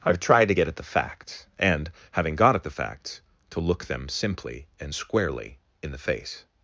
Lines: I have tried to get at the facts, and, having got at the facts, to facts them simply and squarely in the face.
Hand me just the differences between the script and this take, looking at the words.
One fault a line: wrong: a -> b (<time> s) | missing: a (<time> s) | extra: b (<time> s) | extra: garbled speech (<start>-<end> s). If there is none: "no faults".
wrong: facts -> look (3.6 s)